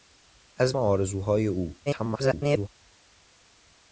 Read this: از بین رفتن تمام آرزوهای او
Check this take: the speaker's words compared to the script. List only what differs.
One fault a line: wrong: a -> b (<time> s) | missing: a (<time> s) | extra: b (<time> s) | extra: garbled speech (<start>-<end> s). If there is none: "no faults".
missing: بین رفتن تمام (0.8 s)
extra: garbled speech (1.9-2.7 s)